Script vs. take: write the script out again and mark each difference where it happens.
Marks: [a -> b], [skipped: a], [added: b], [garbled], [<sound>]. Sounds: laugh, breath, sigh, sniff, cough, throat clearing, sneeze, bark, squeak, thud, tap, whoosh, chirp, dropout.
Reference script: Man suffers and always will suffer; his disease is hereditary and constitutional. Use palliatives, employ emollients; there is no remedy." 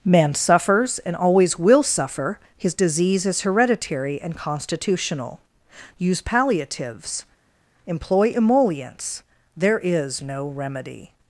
Man suffers and always will suffer; his disease is hereditary and constitutional. Use palliatives, employ emollients; there is no remedy."